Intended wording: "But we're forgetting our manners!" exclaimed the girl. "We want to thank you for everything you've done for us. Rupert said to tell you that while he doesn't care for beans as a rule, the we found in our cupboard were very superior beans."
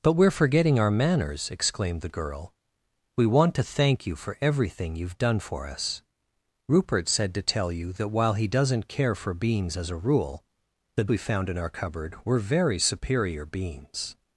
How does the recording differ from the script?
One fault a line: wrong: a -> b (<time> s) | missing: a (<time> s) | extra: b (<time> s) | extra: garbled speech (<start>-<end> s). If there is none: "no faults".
no faults